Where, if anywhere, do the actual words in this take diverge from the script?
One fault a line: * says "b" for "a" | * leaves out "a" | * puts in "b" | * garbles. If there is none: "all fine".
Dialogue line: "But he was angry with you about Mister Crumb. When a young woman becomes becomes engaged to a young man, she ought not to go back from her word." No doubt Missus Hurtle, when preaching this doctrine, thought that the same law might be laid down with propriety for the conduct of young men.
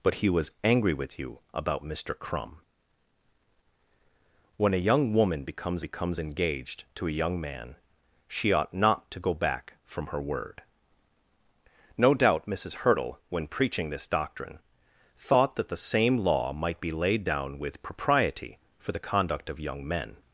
all fine